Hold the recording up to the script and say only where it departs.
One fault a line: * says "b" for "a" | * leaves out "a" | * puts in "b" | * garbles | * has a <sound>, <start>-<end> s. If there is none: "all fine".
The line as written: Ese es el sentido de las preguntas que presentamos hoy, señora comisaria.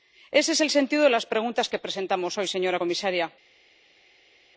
all fine